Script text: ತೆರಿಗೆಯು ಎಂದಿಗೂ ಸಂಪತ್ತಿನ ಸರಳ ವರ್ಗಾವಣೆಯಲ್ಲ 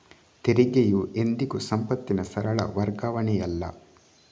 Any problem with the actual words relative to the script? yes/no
no